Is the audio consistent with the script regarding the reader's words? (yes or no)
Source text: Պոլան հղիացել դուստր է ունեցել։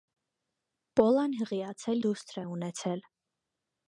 yes